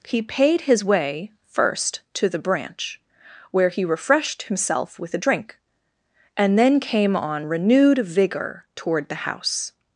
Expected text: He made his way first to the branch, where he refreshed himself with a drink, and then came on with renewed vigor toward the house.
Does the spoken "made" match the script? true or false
false